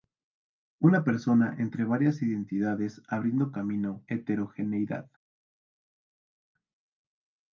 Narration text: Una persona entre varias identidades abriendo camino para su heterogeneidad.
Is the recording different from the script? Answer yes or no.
yes